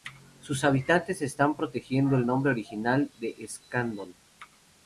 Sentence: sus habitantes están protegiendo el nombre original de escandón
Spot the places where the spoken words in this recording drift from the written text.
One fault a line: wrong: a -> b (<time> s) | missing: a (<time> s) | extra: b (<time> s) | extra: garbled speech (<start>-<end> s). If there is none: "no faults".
no faults